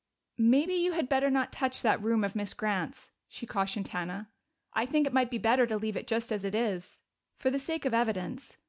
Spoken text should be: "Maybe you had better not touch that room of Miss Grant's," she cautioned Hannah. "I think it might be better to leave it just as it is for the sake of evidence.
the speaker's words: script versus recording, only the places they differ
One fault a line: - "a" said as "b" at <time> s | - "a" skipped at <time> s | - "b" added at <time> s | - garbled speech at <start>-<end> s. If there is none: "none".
none